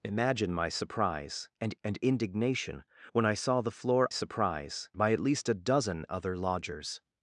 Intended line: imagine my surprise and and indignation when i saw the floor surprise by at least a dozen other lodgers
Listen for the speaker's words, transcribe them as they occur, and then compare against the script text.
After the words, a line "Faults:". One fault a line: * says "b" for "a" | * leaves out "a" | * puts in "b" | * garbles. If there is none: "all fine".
imagine my surprise and and indignation when i saw the floor surprise by at least a dozen other lodgers
Faults:
all fine